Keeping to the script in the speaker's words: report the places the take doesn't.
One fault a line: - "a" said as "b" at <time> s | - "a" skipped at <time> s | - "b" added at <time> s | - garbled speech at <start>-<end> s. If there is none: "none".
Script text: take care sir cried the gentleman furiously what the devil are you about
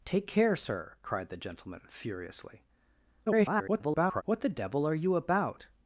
- garbled speech at 3.3-4.2 s